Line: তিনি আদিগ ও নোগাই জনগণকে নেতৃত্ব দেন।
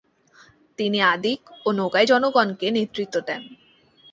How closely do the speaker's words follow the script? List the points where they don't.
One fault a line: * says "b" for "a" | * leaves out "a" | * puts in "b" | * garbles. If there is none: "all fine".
all fine